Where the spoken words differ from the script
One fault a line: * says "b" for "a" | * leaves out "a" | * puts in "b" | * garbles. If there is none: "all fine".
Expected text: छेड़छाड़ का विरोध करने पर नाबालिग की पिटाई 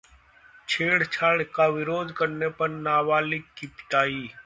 all fine